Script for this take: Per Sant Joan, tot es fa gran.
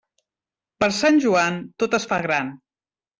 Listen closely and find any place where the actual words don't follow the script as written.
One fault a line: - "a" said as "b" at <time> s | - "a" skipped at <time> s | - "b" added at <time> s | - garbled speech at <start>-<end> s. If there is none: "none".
none